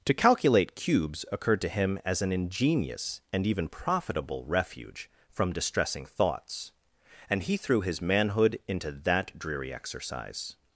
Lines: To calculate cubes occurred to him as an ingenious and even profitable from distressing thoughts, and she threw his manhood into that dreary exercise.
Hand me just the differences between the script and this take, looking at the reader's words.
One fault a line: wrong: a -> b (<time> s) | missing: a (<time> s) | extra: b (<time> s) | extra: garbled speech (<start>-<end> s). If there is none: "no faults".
extra: refuge (4.5 s)
wrong: she -> he (7.4 s)